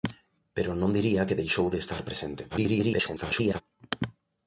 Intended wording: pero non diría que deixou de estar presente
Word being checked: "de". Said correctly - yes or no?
yes